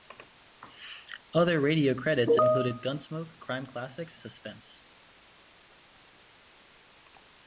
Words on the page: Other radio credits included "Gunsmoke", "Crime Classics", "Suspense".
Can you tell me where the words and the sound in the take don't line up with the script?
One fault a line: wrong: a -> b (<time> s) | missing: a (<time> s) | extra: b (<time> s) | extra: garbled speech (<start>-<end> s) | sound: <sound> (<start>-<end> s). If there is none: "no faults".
no faults